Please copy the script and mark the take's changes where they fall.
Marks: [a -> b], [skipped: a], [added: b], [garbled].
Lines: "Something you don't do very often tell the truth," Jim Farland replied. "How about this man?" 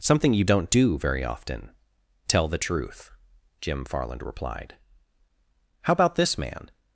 "Something you don't do very often tell the truth," Jim Farland replied. "How about this man?"